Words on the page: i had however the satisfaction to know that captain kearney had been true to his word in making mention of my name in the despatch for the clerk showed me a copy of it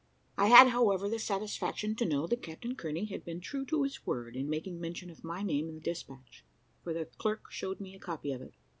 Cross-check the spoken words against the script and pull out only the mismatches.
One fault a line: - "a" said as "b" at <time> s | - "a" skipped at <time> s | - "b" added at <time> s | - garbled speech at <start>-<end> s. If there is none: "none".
none